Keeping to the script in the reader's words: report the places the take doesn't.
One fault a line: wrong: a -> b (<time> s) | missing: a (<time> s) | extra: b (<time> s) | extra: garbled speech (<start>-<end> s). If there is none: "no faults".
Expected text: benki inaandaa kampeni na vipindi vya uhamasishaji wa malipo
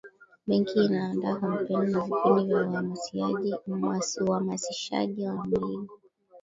no faults